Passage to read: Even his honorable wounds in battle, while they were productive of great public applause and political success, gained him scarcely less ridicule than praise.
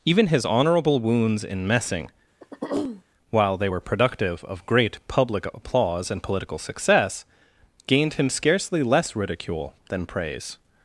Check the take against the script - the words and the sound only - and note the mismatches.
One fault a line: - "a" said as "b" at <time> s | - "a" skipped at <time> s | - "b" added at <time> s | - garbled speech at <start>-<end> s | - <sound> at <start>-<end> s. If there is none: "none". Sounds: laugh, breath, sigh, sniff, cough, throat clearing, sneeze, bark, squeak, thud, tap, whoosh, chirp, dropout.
- "battle" said as "messing" at 1.7 s
- throat clearing at 2.4-3.0 s